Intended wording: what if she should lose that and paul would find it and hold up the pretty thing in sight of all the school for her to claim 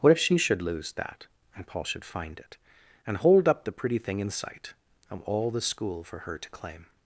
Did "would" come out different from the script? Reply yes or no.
yes